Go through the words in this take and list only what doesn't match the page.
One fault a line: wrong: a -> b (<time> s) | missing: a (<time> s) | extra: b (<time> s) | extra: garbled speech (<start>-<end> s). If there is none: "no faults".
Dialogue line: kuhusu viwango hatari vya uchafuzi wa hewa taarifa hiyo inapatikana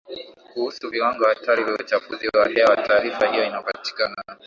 no faults